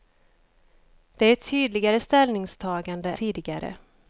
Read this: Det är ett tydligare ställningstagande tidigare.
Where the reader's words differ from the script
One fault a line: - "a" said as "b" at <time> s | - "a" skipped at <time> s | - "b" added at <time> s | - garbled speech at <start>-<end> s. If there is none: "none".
none